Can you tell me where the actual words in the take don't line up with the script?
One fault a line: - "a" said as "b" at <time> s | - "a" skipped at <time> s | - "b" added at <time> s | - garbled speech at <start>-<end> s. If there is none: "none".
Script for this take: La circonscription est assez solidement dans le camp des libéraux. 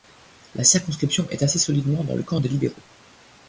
none